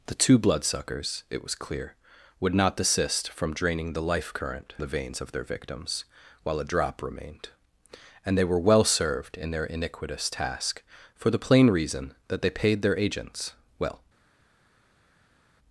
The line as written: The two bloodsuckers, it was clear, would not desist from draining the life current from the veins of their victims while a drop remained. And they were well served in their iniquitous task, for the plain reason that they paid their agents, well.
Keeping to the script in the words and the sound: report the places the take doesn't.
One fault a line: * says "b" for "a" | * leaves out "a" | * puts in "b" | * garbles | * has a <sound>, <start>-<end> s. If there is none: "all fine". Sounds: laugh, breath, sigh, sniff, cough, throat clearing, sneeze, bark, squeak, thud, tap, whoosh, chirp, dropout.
* leaves out "from"